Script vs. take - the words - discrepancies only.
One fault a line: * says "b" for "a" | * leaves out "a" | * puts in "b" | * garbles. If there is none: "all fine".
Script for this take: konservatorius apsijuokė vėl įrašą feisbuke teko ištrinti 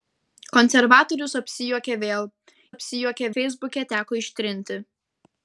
* says "apsijuokė" for "įrašą"